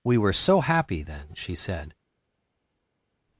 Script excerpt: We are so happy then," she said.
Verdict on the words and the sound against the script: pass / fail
fail